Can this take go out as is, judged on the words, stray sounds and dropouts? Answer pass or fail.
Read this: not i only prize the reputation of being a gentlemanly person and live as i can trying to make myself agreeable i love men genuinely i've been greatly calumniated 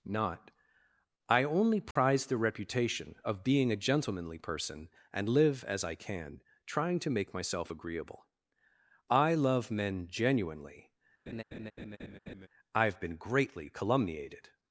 fail